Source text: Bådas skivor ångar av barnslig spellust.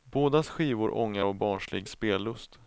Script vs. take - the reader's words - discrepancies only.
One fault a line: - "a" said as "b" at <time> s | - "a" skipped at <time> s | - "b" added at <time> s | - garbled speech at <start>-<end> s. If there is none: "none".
none